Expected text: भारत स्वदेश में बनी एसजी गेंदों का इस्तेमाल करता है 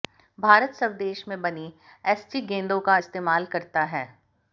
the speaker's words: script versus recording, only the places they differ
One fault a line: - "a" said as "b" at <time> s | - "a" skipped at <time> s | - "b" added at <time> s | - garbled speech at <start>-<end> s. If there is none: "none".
none